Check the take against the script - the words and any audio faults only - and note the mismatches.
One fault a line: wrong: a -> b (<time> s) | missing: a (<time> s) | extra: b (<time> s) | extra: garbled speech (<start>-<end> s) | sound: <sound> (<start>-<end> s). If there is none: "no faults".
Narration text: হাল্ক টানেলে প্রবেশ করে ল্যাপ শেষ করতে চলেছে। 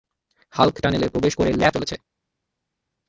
missing: শেষ করতে (1.7 s)